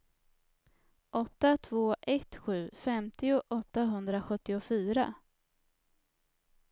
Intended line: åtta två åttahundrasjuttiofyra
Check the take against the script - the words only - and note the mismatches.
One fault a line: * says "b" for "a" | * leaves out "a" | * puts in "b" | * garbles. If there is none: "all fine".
* puts in "ett sju femtio"